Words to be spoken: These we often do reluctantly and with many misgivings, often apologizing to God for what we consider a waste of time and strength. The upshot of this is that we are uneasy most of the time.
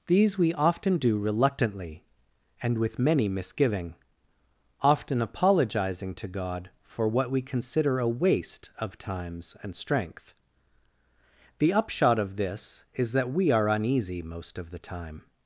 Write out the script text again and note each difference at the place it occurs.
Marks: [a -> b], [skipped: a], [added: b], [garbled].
These we often do reluctantly and with many [misgivings, -> misgiving] often apologizing to God for what we consider a waste of [time -> times] and strength. The upshot of this is that we are uneasy most of the time.